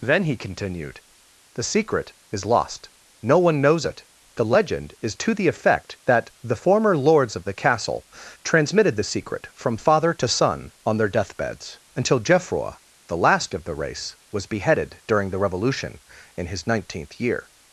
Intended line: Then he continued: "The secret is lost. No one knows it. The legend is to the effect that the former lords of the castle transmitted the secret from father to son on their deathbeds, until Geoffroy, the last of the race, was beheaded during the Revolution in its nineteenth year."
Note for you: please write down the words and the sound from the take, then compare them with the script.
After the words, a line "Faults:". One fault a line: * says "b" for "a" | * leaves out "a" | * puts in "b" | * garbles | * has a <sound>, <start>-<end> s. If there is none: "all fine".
Then he continued: "The secret is lost. No one knows it. The legend is to the effect that the former lords of the castle transmitted the secret from father to son on their deathbeds, until Geoffroy, the last of the race, was beheaded during the Revolution in his nineteenth year."
Faults:
* says "his" for "its"